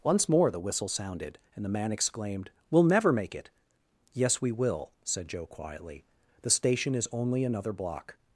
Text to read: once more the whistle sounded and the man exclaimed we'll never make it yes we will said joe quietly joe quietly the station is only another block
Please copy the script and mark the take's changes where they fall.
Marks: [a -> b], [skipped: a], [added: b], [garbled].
once more the whistle sounded and the man exclaimed we'll never make it yes we will said joe quietly [skipped: joe quietly] the station is only another block